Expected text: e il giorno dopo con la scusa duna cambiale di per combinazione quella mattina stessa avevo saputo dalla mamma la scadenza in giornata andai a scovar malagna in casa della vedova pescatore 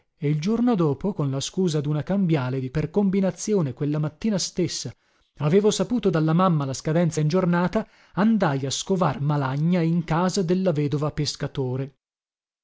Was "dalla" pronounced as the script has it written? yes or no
yes